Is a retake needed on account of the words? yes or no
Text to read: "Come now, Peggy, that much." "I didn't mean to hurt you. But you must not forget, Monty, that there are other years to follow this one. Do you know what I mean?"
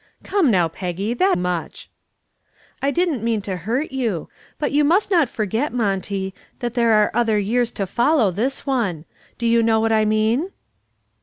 no